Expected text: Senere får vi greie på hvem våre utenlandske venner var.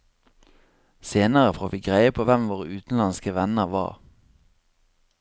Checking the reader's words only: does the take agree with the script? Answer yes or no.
yes